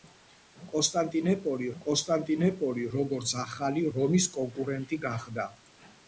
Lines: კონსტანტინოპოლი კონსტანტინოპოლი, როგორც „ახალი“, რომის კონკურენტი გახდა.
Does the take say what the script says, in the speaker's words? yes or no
yes